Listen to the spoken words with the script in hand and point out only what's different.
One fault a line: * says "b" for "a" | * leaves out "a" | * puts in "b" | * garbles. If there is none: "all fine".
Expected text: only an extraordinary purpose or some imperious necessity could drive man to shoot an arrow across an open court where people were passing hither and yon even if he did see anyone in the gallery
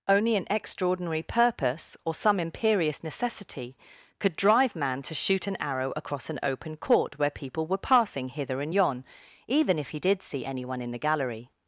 all fine